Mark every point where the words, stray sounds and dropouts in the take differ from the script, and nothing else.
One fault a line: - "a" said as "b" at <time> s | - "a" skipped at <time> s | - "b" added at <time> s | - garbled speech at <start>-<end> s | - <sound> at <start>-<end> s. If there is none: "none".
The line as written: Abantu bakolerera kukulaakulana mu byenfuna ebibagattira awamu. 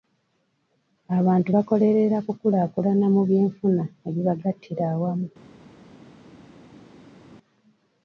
none